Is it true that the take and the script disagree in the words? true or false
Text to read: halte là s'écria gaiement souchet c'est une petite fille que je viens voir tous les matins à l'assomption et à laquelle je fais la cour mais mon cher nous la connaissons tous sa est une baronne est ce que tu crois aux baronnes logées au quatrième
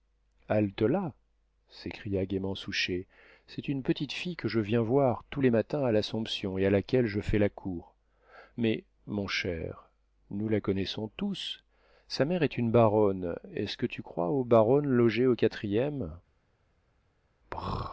true